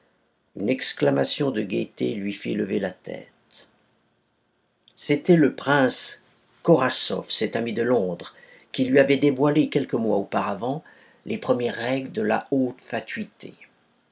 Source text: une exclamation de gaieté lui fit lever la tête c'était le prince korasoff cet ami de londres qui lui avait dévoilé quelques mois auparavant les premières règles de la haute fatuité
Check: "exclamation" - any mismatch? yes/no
no